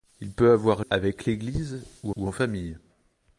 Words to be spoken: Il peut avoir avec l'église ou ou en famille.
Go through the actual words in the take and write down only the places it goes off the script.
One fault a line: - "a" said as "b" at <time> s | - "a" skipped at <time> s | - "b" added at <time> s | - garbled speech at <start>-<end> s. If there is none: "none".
none